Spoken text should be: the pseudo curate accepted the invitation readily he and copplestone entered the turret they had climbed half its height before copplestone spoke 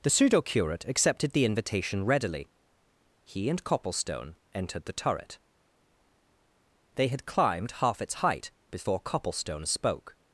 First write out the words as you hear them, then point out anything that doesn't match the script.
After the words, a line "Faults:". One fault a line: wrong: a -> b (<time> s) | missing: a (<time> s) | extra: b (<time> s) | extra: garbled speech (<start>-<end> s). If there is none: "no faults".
the pseudo curate accepted the invitation readily he and copplestone entered the turret they had climbed half its height before copplestone spoke
Faults:
no faults